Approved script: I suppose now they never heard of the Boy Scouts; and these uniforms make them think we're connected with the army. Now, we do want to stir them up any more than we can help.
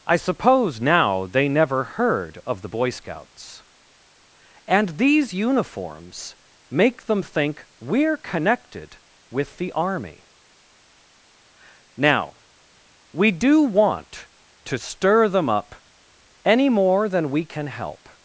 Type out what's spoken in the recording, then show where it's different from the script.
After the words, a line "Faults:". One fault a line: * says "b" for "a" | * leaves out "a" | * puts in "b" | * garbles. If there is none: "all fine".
I suppose now they never heard of the Boy Scouts; and these uniforms make them think we're connected with the army. Now, we do want to stir them up any more than we can help.
Faults:
all fine